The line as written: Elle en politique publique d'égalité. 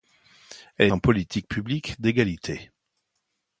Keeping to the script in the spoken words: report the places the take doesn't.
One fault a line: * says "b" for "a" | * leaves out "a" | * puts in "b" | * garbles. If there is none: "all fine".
all fine